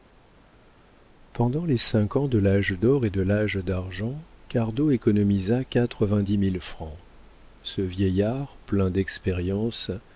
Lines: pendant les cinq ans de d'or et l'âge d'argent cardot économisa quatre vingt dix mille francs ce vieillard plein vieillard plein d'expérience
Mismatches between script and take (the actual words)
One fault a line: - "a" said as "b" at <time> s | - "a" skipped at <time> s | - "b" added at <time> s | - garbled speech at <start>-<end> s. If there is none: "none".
- "l'âge" added at 2.4 s
- "de" added at 3.1 s
- "vieillard plein" skipped at 8.9 s